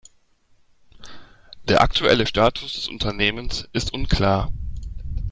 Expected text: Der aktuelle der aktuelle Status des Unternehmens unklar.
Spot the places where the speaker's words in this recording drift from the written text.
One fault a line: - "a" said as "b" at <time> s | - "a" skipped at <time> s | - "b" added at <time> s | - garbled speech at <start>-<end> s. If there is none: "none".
- "der aktuelle" skipped at 2.2 s
- "ist" added at 3.7 s